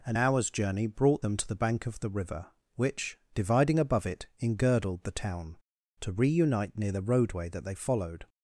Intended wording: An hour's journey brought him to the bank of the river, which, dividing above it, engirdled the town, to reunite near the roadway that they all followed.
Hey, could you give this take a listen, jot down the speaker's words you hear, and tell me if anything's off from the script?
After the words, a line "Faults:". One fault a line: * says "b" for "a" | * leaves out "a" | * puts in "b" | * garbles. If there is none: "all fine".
An hour's journey brought them to the bank of the river, which, dividing above it, engirdled the town, to reunite near the roadway that they followed.
Faults:
* says "them" for "him"
* leaves out "all"